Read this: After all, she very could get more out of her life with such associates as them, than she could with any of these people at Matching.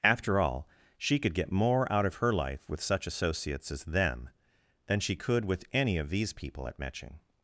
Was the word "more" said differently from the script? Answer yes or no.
no